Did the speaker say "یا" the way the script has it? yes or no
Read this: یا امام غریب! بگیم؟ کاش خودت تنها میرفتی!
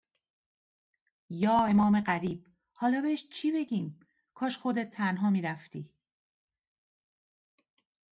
yes